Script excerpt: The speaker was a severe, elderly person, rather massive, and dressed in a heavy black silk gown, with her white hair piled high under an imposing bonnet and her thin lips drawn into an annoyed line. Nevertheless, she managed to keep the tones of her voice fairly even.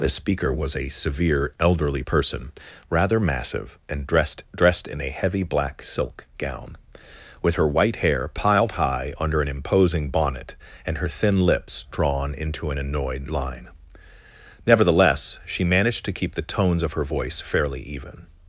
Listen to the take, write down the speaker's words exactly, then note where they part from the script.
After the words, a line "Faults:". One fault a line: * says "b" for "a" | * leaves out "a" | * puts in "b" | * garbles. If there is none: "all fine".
The speaker was a severe, elderly person, rather massive, and dressed dressed in a heavy black silk gown, with her white hair piled high under an imposing bonnet and her thin lips drawn into an annoyed line. Nevertheless, she managed to keep the tones of her voice fairly even.
Faults:
* puts in "dressed"